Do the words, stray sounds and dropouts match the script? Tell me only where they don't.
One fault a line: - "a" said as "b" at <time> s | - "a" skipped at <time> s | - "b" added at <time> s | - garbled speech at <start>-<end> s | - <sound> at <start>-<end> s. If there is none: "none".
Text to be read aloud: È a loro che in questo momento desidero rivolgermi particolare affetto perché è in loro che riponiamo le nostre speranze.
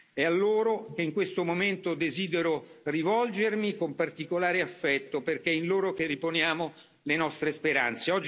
- "con" added at 3.8 s